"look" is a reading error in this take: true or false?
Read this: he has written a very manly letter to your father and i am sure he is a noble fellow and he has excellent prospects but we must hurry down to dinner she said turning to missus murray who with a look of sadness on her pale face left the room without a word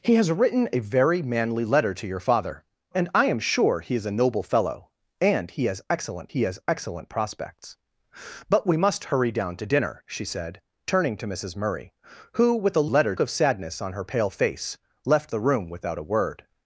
true